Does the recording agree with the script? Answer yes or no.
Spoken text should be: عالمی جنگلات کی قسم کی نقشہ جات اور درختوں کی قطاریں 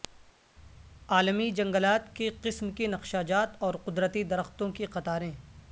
no